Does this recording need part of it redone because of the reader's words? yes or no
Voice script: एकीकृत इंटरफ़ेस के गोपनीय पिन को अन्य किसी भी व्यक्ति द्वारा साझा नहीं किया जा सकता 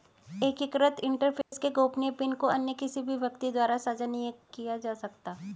no